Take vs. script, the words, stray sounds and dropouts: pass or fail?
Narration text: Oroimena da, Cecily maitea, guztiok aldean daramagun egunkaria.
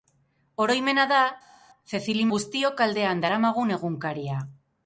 fail